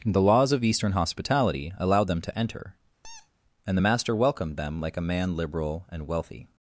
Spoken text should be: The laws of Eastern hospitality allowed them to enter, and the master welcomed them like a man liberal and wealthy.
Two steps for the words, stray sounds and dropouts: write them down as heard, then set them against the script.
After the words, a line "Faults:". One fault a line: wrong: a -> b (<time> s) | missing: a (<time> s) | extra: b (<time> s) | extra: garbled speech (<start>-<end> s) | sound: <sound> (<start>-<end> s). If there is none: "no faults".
The laws of Eastern hospitality allowed them to enter, and the master welcomed them like a man liberal and wealthy.
Faults:
sound: squeak (3.0-3.3 s)